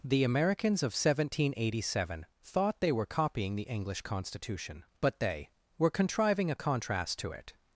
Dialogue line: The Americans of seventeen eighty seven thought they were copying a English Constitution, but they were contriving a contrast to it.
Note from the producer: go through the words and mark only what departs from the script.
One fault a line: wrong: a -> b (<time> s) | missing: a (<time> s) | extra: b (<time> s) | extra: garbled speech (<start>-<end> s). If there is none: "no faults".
wrong: a -> the (3.5 s)